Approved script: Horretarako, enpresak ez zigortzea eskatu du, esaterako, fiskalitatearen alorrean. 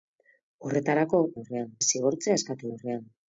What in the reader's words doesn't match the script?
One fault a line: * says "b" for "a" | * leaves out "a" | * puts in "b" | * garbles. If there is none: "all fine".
* says "alorrean" for "enpresak"
* leaves out "du esaterako fiskalitatearen"